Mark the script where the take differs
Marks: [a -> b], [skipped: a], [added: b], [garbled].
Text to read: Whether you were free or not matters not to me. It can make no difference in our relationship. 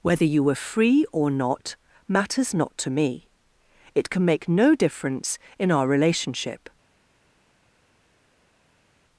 Whether you were free or not matters not to me. It can make no difference in our relationship.